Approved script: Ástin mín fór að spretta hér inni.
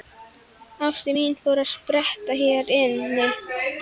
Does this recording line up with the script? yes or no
yes